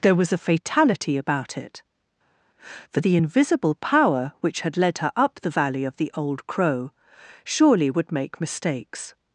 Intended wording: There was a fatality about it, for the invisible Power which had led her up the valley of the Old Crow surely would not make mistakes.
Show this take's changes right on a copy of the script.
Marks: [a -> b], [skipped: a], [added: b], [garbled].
There was a fatality about it, for the invisible Power which had led her up the valley of the Old Crow surely would [skipped: not] make mistakes.